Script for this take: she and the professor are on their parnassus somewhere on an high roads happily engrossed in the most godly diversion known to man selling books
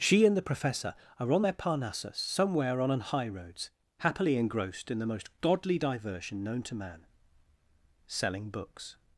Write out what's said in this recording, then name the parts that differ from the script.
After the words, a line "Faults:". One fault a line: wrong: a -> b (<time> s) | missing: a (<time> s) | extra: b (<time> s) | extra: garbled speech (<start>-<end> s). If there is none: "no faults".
she and the professor are on their parnassus somewhere on an high roads happily engrossed in the most godly diversion known to man selling books
Faults:
no faults